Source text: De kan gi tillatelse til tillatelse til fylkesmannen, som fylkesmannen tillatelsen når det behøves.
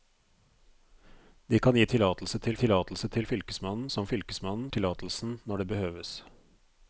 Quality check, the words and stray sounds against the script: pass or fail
pass